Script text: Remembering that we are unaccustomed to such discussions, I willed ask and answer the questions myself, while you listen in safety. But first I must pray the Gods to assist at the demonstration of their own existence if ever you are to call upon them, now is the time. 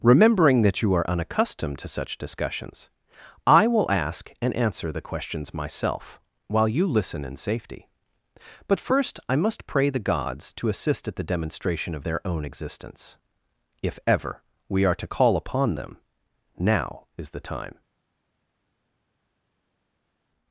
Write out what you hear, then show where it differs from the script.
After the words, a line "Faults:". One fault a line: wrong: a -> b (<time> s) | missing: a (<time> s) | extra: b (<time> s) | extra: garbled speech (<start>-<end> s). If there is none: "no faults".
Remembering that you are unaccustomed to such discussions, I will ask and answer the questions myself, while you listen in safety. But first I must pray the Gods to assist at the demonstration of their own existence if ever we are to call upon them, now is the time.
Faults:
wrong: we -> you (0.8 s)
wrong: willed -> will (3.7 s)
wrong: you -> we (14.7 s)